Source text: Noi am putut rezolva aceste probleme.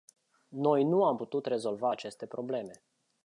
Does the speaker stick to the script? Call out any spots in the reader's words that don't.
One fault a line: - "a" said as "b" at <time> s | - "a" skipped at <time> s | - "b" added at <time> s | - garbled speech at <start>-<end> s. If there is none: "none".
- "nu" added at 0.8 s